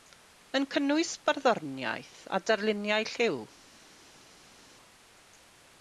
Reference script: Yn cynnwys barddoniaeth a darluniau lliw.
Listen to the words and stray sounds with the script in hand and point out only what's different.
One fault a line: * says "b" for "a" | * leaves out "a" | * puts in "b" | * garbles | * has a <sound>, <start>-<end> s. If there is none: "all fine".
all fine